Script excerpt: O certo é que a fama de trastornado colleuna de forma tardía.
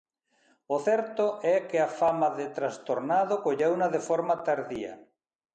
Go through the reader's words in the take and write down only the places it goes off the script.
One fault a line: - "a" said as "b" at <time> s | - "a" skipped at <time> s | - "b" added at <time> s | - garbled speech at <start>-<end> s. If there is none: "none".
none